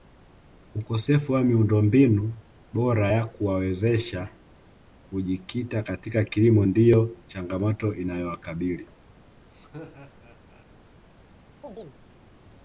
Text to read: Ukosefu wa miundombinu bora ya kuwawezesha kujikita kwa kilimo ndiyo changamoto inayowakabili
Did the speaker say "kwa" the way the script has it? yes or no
no